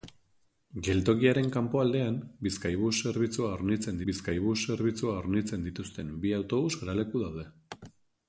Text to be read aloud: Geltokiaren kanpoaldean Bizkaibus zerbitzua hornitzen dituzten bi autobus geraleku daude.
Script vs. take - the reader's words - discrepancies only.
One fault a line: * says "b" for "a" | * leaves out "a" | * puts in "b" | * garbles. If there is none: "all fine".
* puts in "Bizkaibus zerbitzua hornitzen"